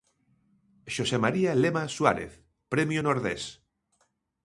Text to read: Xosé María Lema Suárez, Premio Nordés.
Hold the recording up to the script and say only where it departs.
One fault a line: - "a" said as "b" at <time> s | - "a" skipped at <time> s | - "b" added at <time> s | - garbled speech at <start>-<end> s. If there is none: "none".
none